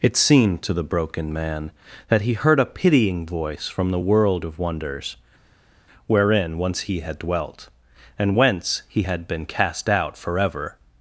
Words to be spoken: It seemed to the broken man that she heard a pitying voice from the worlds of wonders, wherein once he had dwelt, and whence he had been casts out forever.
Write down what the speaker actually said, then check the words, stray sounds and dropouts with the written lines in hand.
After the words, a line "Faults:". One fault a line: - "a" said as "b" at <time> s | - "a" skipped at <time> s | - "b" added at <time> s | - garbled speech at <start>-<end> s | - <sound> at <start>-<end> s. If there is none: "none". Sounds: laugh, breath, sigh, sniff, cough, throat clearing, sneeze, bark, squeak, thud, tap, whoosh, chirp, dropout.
It seemed to the broken man that he heard a pitying voice from the world of wonders, wherein once he had dwelt, and whence he had been cast out forever.
Faults:
- "she" said as "he" at 2.2 s
- "worlds" said as "world" at 4.0 s
- "casts" said as "cast" at 9.4 s